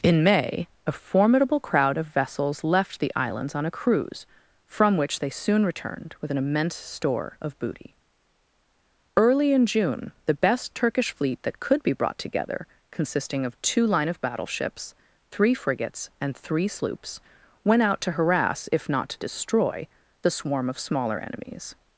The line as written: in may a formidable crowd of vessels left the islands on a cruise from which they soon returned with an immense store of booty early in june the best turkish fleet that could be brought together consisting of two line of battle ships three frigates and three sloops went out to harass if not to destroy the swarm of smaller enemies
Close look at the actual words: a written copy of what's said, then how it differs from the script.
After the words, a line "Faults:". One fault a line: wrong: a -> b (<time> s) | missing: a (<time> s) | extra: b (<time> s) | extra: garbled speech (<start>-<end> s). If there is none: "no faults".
in may a formidable crowd of vessels left the islands on a cruise from which they soon returned with an immense store of booty early in june the best turkish fleet that could be brought together consisting of two line of battle ships three frigates and three sloops went out to harass if not to destroy the swarm of smaller enemies
Faults:
no faults